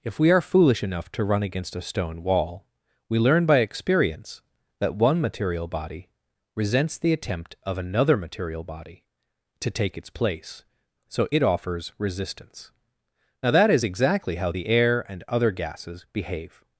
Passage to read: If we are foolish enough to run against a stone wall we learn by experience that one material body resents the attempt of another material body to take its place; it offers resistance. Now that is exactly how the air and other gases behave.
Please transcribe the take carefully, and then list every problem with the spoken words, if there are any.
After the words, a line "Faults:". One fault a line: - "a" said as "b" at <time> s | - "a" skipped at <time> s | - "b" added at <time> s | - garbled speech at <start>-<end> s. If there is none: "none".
If we are foolish enough to run against a stone wall we learn by experience that one material body resents the attempt of another material body to take its place; so it offers resistance. Now that is exactly how the air and other gases behave.
Faults:
- "so" added at 11.1 s